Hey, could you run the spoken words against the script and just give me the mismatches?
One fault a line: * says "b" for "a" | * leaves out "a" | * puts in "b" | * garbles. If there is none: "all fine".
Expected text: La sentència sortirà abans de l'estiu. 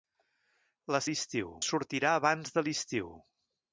* says "l'estiu" for "sentència"